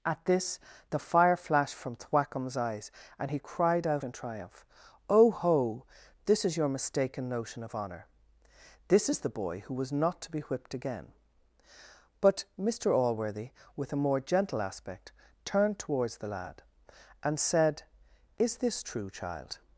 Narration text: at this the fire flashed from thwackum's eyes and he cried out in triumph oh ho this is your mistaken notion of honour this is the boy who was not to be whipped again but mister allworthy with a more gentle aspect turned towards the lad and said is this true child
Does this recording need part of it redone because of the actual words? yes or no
no